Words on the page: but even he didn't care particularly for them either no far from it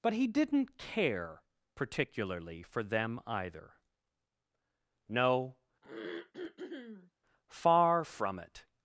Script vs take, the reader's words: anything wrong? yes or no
yes